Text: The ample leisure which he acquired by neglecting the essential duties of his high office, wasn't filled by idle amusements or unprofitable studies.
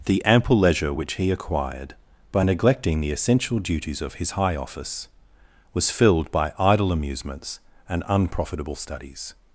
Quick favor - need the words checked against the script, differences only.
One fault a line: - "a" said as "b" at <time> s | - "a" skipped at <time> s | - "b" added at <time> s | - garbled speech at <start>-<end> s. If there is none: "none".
- "wasn't" said as "was" at 5.7 s
- "or" said as "and" at 7.9 s